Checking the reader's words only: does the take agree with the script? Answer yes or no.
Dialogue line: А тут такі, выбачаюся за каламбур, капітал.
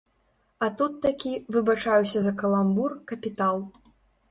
yes